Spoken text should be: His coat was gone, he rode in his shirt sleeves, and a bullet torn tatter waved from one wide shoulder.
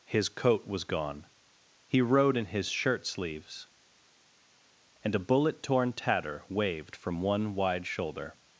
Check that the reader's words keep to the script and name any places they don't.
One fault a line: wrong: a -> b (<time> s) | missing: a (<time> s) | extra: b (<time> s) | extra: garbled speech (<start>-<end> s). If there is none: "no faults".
no faults